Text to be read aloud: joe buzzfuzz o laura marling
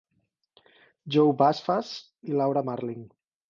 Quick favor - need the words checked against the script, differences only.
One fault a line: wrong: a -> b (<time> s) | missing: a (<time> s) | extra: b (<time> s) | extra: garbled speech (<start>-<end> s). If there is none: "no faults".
wrong: o -> i (2.2 s)